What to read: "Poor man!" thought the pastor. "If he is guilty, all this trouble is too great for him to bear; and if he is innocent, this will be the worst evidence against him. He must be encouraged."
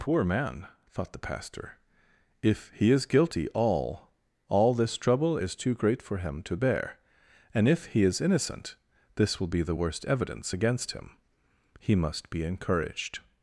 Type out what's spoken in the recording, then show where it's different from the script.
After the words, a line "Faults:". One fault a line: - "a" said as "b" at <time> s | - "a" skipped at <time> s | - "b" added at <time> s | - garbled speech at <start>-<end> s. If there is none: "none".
"Poor man!" thought the pastor. "If he is guilty, all all this trouble is too great for him to bear; and if he is innocent, this will be the worst evidence against him. He must be encouraged."
Faults:
- "all" added at 4.5 s